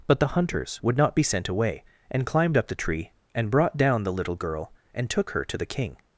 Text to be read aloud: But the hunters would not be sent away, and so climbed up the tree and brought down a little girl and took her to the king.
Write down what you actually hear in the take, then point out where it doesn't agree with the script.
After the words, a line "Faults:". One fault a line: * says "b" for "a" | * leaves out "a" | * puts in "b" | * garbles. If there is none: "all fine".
But the hunters would not be sent away, and climbed up the tree and brought down the little girl and took her to the king.
Faults:
* leaves out "so"
* says "the" for "a"